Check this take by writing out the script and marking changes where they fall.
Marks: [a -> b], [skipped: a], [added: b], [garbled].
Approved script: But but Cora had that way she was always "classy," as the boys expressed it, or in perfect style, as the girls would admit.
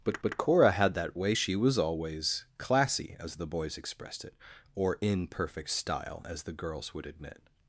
But but Cora had that way she was always "classy," as the boys expressed it, or in perfect style, as the girls would admit.